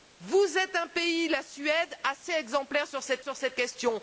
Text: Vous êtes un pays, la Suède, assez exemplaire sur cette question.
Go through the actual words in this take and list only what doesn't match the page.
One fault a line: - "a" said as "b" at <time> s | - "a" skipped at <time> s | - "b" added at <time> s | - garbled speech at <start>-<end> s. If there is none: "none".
- "sur cette" added at 3.2 s